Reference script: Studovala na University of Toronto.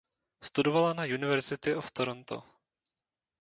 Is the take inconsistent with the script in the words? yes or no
no